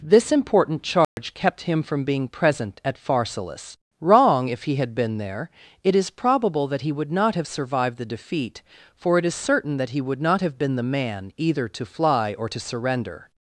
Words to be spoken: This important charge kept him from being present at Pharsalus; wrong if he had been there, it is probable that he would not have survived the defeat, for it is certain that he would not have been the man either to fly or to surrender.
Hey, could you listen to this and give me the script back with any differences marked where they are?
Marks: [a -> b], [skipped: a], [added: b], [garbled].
This important charge kept him from being present at Pharsalus; wrong if he had been there, it is probable that he would not have survived the defeat, for it is certain that he would not have been the man either to fly or to surrender.